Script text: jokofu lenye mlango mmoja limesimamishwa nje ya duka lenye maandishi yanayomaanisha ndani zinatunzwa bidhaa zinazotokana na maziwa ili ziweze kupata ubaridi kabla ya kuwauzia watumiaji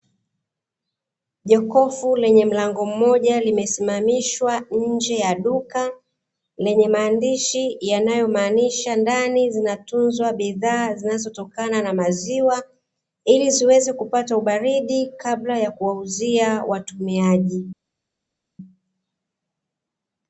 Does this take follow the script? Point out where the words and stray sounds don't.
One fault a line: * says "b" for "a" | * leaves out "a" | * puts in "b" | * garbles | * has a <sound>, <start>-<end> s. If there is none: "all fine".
all fine